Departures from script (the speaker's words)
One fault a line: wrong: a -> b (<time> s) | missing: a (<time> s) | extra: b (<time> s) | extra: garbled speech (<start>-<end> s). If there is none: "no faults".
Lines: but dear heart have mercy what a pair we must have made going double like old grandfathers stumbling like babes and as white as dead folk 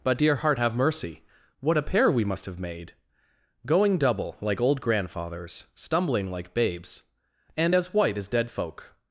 no faults